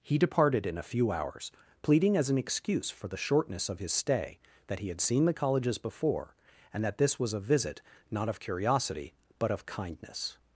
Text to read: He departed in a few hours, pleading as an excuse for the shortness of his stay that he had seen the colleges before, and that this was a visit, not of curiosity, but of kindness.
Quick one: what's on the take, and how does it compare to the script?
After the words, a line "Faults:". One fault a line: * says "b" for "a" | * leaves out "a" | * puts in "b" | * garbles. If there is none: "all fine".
He departed in a few hours, pleading as an excuse for the shortness of his stay that he had seen the colleges before, and that this was a visit, not of curiosity, but of kindness.
Faults:
all fine